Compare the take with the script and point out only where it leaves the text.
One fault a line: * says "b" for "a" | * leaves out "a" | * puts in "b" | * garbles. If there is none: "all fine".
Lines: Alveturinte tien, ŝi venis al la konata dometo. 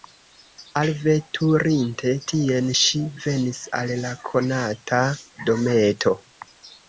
all fine